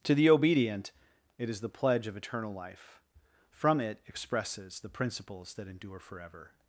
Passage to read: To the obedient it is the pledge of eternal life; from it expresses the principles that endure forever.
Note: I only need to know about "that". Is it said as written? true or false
true